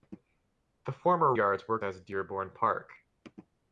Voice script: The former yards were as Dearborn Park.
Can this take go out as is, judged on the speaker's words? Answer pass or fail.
pass